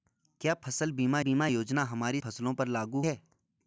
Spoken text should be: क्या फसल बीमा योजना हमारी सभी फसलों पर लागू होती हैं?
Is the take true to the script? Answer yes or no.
no